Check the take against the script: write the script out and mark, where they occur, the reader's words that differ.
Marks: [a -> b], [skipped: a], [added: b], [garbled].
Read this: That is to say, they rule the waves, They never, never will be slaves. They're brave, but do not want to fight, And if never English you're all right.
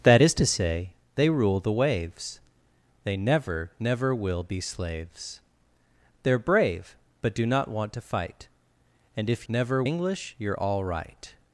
That is to say, they rule the waves, They never, never will be slaves. They're brave, but do not want to fight, And if never English you're all right.